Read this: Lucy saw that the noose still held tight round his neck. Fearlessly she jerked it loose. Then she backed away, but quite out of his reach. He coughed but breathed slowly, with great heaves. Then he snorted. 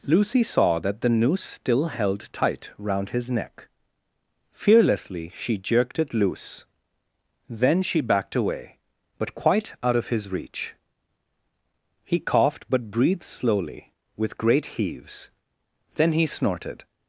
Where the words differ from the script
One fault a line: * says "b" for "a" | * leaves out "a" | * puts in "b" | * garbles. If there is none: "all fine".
all fine